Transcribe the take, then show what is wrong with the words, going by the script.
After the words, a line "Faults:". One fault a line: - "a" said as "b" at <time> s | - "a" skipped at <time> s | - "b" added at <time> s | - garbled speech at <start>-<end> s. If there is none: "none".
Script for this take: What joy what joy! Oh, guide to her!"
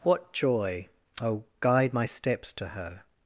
What joy! Oh, guide my steps to her!"
Faults:
- "what joy Oh guide" said as "Oh guide my steps" at 1.2 s